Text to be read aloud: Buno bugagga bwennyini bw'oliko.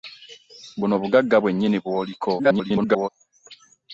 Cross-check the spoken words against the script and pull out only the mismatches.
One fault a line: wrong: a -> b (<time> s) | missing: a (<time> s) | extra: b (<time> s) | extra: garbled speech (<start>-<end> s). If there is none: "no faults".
extra: garbled speech (2.4-3.1 s)